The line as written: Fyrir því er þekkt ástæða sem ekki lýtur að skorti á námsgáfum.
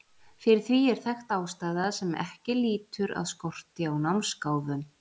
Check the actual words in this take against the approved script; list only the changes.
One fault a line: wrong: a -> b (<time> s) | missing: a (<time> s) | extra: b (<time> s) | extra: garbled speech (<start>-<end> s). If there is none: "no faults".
no faults